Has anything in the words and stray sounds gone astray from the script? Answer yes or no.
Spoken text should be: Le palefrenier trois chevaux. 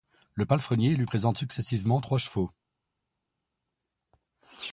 yes